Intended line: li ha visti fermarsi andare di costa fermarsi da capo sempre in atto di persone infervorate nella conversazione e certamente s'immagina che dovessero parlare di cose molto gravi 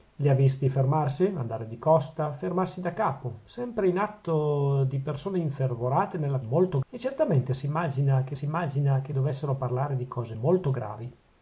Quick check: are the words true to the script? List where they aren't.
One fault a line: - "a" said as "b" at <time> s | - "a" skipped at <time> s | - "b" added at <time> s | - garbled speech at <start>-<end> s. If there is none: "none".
- "conversazione" said as "molto" at 6.4 s
- "s'immagina che" added at 8.3 s